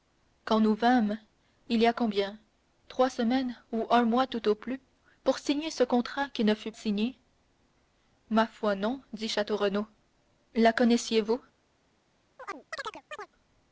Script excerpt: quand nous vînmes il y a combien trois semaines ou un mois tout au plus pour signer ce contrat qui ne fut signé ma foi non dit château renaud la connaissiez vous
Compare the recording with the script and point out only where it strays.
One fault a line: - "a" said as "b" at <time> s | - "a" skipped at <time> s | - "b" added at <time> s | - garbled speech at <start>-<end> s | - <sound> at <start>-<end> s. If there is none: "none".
- chirp at 12.4-13.3 s